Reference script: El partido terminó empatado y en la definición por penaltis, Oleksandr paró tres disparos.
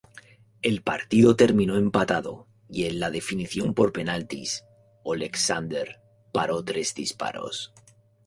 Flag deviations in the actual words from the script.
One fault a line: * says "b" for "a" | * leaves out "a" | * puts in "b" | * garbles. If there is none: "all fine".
all fine